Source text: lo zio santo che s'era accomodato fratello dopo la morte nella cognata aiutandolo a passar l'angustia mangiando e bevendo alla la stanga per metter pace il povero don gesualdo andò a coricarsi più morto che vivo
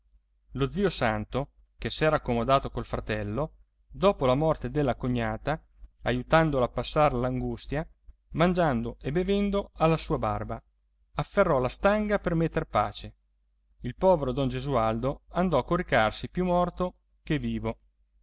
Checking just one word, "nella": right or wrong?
wrong